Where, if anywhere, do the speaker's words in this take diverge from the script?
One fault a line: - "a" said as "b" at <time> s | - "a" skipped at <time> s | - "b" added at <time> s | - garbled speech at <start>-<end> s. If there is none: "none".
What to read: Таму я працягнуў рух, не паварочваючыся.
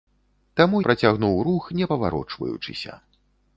- "я" skipped at 0.8 s